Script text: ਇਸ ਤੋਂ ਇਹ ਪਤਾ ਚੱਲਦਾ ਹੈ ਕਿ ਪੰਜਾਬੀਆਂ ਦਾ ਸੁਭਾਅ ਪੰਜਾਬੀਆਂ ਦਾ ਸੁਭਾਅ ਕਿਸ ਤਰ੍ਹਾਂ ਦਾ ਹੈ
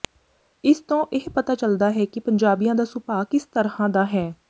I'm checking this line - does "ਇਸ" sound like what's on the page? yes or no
yes